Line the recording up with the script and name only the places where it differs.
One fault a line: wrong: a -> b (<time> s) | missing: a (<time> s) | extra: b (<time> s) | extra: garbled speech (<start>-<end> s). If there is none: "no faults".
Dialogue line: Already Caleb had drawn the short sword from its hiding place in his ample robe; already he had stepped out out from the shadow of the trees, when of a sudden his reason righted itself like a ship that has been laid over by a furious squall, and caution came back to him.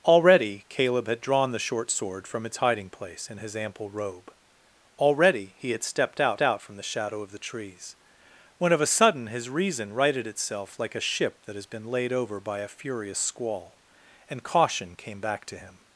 no faults